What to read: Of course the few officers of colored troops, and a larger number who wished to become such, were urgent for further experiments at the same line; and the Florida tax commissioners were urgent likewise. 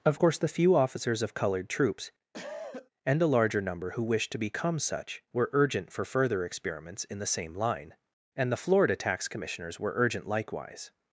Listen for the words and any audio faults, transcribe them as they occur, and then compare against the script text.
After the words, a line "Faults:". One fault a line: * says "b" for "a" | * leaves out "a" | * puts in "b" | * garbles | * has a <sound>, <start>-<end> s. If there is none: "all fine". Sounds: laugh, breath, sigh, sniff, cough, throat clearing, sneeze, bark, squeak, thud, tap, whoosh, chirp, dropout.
Of course the few officers of colored troops, and a larger number who wished to become such, were urgent for further experiments in the same line; and the Florida tax commissioners were urgent likewise.
Faults:
* has a cough, 2.3-2.9 s
* says "in" for "at"